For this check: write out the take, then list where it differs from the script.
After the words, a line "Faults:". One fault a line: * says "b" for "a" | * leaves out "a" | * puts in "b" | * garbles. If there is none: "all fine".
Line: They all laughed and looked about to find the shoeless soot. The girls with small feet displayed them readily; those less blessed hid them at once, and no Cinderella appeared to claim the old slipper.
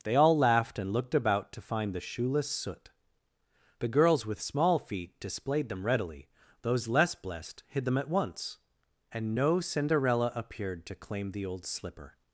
They all laughed and looked about to find the shoeless soot. The girls with small feet displayed them readily; those less blessed hid them at once, and no Cinderella appeared to claim the old slipper.
Faults:
all fine